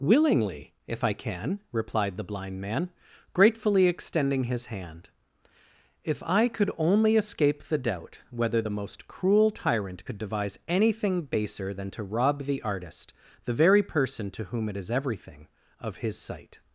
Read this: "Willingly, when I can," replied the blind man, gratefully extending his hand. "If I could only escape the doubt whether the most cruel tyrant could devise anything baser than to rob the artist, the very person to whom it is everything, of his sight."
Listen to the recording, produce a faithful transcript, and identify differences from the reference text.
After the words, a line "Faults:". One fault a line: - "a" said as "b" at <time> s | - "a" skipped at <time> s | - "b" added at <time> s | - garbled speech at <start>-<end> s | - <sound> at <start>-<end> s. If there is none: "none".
"Willingly, if I can," replied the blind man, gratefully extending his hand. "If I could only escape the doubt whether the most cruel tyrant could devise anything baser than to rob the artist, the very person to whom it is everything, of his sight."
Faults:
- "when" said as "if" at 0.9 s